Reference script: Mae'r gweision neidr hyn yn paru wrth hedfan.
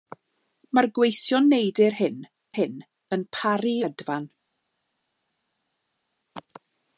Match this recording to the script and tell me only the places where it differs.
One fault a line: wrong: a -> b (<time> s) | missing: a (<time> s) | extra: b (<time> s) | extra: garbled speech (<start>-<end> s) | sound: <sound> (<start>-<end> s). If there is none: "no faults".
extra: hyn (2.6 s)
missing: wrth (3.8 s)